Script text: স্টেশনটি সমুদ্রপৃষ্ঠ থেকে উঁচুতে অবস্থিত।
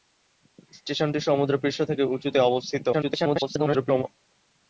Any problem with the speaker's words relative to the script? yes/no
yes